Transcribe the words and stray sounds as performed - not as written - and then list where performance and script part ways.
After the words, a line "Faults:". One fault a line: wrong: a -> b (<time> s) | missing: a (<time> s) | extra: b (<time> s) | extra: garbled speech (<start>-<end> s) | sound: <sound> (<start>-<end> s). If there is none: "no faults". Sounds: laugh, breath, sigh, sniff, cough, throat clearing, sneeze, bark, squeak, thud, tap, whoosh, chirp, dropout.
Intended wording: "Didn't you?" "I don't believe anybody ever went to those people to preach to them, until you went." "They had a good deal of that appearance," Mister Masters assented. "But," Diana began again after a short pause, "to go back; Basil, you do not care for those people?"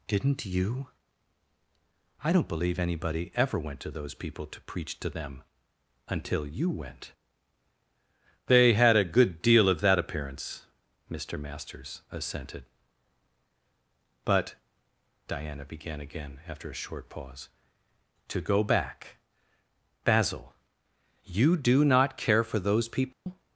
"Didn't you?" "I don't believe anybody ever went to those people to preach to them, until you went." "They had a good deal of that appearance," Mister Masters assented. "But," Diana began again after a short pause, "to go back; Basil, you do not care for those people?"
Faults:
sound: dropout (23.1-23.3 s)